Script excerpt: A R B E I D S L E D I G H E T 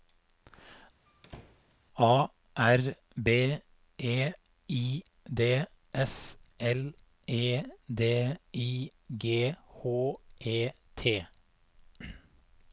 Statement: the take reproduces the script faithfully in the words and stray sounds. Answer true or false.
false